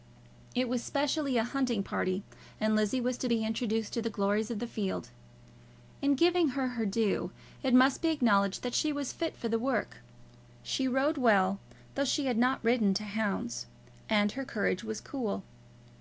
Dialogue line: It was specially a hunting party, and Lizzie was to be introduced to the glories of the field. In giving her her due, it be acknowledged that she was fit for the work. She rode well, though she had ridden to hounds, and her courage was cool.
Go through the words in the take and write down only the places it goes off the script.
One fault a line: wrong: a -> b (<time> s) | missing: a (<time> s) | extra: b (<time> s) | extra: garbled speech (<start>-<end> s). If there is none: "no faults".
extra: must (7.7 s)
extra: not (12.4 s)